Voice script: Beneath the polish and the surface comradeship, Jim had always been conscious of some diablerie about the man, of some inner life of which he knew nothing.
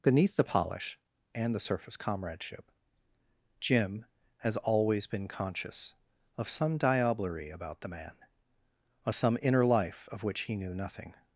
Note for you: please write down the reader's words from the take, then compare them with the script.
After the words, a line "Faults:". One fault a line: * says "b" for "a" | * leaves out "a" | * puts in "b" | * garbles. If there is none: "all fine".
Beneath the polish and the surface comradeship, Jim has always been conscious of some diablerie about the man, of some inner life of which he knew nothing.
Faults:
* says "has" for "had"